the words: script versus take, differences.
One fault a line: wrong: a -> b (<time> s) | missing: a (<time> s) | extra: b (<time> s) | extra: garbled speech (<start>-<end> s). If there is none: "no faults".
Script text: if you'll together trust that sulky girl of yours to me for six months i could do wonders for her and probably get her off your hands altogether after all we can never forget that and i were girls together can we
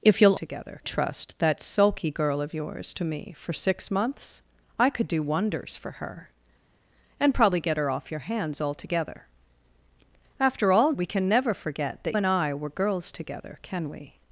no faults